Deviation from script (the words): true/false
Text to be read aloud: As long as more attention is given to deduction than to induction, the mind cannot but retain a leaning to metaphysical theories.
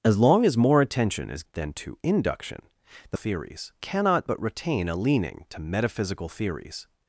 true